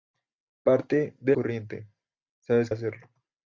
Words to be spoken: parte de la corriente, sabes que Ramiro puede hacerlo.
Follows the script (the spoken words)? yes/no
no